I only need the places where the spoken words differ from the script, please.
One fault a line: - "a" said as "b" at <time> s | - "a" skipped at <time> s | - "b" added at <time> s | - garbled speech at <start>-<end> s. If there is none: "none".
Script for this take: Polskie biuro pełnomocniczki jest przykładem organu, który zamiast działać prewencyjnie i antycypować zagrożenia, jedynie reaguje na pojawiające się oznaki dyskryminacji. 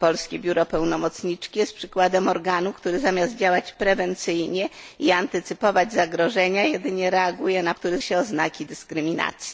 - "pojawiające" said as "który" at 7.7 s